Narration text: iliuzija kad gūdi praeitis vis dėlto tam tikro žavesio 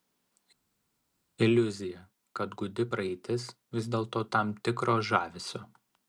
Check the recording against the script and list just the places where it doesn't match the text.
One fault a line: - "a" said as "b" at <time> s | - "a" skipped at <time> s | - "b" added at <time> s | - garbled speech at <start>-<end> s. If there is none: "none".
none